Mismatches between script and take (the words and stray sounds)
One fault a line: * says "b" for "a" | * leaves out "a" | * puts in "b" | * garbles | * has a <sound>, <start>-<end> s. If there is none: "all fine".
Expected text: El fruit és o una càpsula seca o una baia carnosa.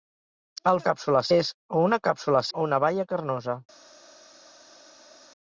* says "càpsula" for "fruit"
* leaves out "seca"